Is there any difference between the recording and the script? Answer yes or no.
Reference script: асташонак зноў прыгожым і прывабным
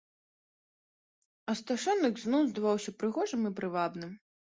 yes